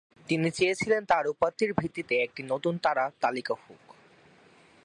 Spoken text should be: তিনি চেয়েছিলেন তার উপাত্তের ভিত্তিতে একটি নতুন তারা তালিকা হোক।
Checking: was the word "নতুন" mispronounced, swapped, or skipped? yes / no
no